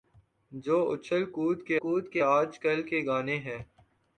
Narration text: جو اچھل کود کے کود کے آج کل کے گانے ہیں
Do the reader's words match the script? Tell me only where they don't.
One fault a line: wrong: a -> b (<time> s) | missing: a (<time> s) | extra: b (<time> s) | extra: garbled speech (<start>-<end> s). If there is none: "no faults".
no faults